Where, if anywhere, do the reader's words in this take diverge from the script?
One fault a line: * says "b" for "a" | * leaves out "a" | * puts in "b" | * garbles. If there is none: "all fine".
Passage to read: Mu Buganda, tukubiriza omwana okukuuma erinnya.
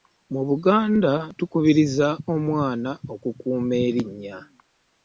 all fine